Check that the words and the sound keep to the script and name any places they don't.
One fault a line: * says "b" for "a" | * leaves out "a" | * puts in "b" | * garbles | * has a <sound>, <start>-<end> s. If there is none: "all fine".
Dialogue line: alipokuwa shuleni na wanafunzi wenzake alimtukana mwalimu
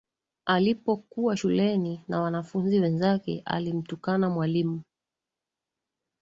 all fine